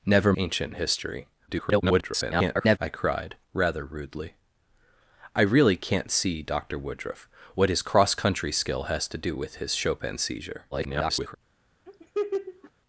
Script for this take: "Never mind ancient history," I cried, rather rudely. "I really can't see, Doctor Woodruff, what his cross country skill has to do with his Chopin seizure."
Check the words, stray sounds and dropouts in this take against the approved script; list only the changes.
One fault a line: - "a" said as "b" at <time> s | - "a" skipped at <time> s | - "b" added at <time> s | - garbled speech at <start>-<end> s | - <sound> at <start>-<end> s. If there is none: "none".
- "mind" skipped at 0.3 s
- garbled speech at 1.5-2.8 s
- garbled speech at 10.7-11.3 s
- laugh at 11.9-12.7 s